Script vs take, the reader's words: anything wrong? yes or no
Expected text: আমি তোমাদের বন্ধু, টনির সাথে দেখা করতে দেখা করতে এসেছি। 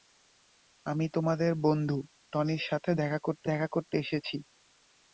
no